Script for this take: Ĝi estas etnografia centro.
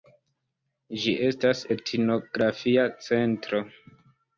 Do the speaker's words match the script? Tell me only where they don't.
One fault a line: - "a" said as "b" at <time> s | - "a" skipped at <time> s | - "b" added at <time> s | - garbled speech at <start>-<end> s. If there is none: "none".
none